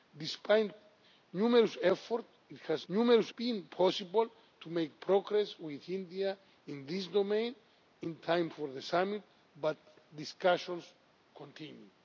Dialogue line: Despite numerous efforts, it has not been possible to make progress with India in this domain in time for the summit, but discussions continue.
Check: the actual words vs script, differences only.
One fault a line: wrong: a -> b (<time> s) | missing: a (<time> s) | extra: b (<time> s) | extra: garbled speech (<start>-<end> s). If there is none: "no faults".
wrong: not -> numerous (2.9 s)